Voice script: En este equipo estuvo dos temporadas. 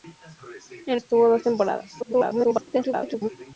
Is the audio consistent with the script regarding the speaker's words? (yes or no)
no